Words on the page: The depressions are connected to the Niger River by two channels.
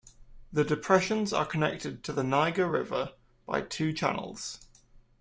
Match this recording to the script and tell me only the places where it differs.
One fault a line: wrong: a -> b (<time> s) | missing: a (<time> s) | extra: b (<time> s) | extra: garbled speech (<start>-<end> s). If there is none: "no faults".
no faults